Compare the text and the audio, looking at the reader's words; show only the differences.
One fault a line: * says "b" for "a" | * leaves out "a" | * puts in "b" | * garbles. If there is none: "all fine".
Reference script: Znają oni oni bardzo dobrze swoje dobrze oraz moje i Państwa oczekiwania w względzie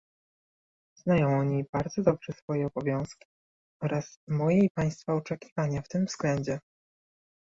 * leaves out "oni"
* says "obowiązki" for "dobrze"
* puts in "tym"